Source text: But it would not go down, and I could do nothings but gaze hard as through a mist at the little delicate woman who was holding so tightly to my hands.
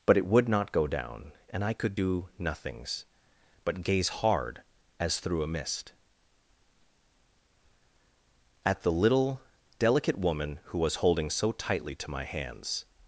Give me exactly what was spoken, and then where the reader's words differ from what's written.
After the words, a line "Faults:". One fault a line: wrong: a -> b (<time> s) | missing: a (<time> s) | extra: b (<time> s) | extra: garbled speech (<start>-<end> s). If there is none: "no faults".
But it would not go down, and I could do nothings but gaze hard as through a mist at the little delicate woman who was holding so tightly to my hands.
Faults:
no faults